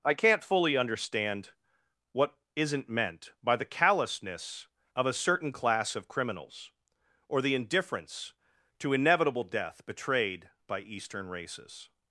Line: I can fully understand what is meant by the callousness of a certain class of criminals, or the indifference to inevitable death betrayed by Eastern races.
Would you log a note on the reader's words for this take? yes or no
yes